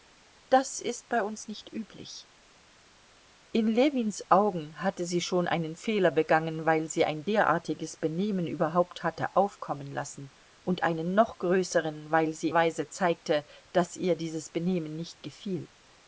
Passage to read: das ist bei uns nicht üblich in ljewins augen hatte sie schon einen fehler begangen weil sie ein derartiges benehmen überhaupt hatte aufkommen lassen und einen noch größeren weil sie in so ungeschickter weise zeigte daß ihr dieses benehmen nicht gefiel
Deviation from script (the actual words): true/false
true